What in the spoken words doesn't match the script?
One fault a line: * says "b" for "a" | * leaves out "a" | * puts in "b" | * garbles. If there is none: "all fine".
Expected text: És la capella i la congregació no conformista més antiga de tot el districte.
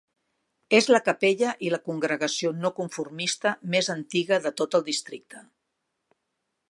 all fine